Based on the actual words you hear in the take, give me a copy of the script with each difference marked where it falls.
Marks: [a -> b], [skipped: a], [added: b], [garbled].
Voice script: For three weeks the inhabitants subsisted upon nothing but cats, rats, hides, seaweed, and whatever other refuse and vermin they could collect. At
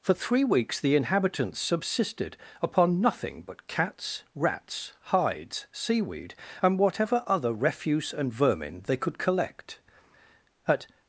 For three weeks the inhabitants subsisted upon nothing but cats, rats, hides, seaweed, and whatever other refuse and vermin they could collect. At